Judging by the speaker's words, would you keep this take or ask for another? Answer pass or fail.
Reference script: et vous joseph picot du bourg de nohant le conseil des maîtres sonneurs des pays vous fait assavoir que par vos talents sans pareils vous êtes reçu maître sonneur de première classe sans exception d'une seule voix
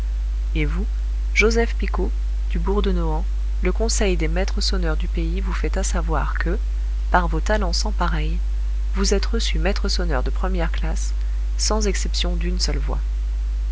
fail